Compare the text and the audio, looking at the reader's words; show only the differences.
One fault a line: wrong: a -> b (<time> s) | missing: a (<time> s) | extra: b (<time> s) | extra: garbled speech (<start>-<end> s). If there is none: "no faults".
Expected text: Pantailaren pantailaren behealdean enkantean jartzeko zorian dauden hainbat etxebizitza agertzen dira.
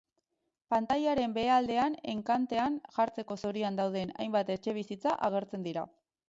missing: pantailaren (1.4 s)